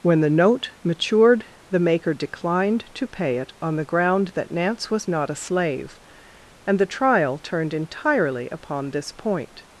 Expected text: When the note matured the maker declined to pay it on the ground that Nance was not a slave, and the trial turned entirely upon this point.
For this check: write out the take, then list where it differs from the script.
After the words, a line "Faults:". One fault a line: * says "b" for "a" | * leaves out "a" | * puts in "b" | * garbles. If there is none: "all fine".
When the note matured the maker declined to pay it on the ground that Nance was not a slave, and the trial turned entirely upon this point.
Faults:
all fine